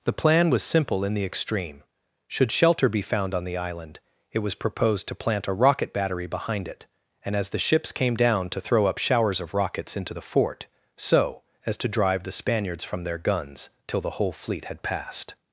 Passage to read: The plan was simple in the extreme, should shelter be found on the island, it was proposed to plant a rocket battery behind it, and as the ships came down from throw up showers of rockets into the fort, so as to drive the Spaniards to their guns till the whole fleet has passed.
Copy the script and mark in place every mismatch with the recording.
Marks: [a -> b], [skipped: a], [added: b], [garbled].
The plan was simple in the extreme, should shelter be found on the island, it was proposed to plant a rocket battery behind it, and as the ships came down [from -> to] throw up showers of rockets into the fort, so as to drive the Spaniards [to -> from] their guns till the whole fleet [has -> had] passed.